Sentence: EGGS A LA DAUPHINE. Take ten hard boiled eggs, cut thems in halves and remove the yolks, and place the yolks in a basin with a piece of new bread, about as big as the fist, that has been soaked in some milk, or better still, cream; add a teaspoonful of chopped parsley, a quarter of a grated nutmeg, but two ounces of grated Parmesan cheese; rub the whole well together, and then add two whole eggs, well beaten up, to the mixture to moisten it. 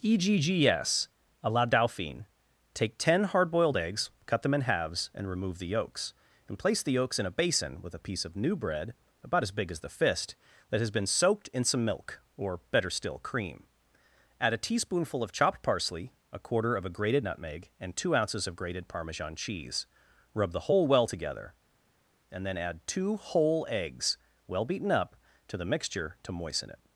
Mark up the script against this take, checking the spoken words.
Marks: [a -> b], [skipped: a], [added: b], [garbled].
EGGS A LA DAUPHINE. Take ten hard boiled eggs, cut [thems -> them] in halves and remove the yolks, and place the yolks in a basin with a piece of new bread, about as big as the fist, that has been soaked in some milk, or better still, cream; add a teaspoonful of chopped parsley, a quarter of a grated nutmeg, [but -> and] two ounces of grated Parmesan cheese; rub the whole well together, and then add two whole eggs, well beaten up, to the mixture to moisten it.